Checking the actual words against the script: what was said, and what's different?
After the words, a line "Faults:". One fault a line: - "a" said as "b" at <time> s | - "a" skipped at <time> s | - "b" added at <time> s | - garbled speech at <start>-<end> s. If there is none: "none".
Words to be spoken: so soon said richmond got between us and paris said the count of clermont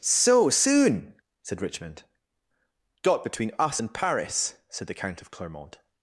so soon said richmond got between us and paris said the count of clermont
Faults:
none